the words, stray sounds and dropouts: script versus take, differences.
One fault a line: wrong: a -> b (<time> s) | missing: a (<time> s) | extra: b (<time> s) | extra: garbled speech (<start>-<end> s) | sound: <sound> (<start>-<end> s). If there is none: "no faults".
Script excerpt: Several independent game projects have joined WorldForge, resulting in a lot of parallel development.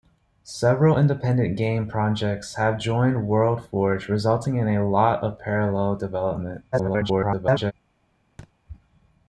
extra: garbled speech (6.7-7.7 s)
sound: thud (8.4-8.5 s)